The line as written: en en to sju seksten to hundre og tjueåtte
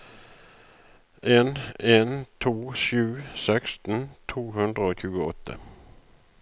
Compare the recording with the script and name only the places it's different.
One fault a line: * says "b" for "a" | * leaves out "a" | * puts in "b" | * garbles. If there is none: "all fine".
all fine